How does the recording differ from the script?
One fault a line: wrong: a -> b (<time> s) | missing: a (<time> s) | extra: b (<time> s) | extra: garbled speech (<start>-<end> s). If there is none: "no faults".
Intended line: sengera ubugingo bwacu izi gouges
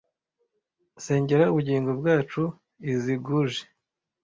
no faults